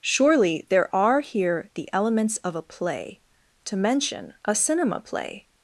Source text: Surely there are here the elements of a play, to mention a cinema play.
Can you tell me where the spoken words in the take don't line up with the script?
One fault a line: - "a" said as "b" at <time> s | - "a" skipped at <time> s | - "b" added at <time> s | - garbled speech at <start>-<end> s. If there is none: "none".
none